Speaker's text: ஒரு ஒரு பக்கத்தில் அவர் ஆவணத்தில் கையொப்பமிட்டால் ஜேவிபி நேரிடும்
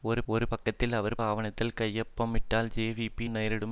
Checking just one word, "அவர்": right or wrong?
right